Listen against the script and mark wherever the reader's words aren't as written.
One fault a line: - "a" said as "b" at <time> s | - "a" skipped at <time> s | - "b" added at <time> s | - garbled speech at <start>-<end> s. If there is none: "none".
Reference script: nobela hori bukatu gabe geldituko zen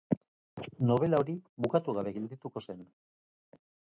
none